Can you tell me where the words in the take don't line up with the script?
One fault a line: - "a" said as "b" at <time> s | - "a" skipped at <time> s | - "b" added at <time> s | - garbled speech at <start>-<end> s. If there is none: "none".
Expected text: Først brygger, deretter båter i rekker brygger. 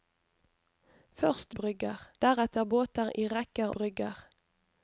none